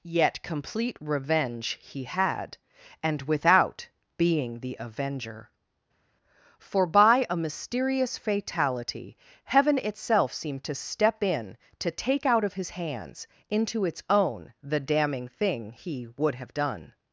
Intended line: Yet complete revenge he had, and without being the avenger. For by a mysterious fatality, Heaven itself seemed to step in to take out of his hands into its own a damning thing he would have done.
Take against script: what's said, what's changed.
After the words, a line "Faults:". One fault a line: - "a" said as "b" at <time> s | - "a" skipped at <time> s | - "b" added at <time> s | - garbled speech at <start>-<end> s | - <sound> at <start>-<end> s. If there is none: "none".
Yet complete revenge he had, and without being the avenger. For by a mysterious fatality, Heaven itself seemed to step in to take out of his hands into its own the damning thing he would have done.
Faults:
- "a" said as "the" at 14.6 s